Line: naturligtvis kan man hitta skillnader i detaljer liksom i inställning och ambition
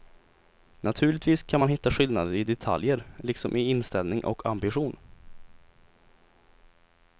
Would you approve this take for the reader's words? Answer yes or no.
yes